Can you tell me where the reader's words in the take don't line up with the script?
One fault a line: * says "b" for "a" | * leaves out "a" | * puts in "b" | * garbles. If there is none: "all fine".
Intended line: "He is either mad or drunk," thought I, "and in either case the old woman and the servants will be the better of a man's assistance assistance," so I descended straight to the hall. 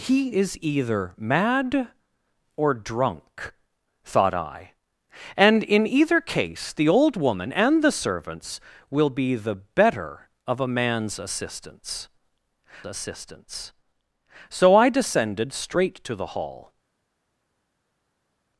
all fine